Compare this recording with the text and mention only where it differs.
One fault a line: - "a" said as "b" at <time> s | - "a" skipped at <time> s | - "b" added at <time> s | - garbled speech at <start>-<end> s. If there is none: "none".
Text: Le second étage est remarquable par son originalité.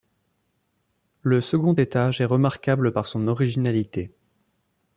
none